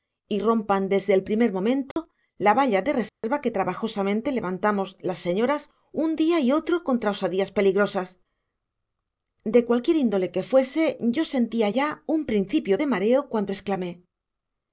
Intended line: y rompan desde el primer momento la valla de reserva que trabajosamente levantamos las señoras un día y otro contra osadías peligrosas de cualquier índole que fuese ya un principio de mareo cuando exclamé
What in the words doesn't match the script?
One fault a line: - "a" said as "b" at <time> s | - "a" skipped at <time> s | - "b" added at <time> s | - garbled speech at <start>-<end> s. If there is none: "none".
- "yo sentía" added at 11.0 s